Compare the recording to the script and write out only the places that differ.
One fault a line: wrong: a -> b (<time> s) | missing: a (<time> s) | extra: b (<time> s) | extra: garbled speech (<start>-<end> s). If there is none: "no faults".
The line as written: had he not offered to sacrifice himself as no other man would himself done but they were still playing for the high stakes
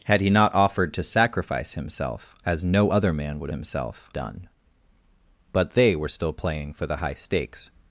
no faults